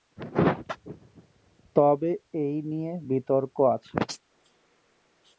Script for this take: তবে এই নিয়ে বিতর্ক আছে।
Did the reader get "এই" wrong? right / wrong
right